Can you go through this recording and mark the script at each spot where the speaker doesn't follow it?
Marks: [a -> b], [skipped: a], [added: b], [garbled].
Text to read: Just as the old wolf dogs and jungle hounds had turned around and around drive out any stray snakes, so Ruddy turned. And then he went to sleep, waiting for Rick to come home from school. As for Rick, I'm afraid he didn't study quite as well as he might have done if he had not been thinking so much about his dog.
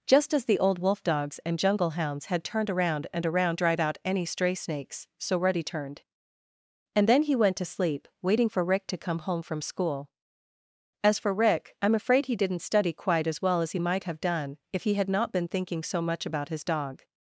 Just as the old wolf dogs and jungle hounds had turned around and around drive out any stray snakes, so Ruddy turned. And then he went to sleep, waiting for Rick to come home from school. As for Rick, I'm afraid he didn't study quite as well as he might have done if he had not been thinking so much about his dog.